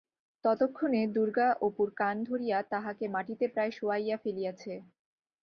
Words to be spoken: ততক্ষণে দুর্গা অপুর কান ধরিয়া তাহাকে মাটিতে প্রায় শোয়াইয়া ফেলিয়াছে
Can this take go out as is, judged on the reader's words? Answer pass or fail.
pass